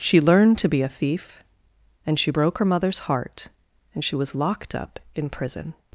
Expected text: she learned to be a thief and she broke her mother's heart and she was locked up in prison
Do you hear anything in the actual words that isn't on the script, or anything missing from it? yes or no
no